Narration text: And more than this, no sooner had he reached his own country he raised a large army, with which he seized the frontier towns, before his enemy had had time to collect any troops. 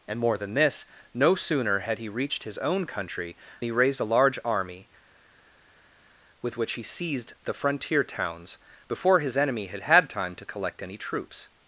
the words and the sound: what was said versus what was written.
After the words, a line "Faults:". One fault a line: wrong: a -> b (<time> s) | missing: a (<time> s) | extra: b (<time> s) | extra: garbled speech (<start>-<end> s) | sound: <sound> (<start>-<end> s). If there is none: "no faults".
And more than this, no sooner had he reached his own country he raised a large army, with which he seized the frontier towns, before his enemy had had time to collect any troops.
Faults:
no faults